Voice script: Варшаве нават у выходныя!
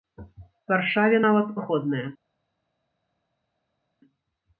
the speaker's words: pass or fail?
fail